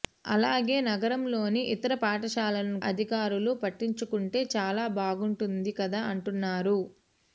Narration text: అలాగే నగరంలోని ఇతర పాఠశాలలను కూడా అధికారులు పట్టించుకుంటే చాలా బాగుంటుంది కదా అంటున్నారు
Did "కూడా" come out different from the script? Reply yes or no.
yes